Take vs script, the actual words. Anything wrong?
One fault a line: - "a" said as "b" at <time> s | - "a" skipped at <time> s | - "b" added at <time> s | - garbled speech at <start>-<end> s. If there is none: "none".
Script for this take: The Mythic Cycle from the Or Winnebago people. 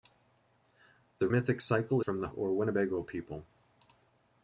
none